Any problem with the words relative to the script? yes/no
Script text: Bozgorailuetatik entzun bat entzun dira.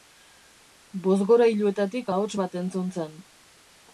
yes